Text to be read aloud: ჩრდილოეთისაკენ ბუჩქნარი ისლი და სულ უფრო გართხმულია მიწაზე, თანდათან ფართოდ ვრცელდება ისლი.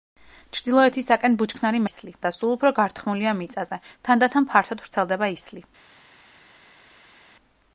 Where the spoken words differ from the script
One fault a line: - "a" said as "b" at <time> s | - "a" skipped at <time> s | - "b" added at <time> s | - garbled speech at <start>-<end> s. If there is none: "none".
none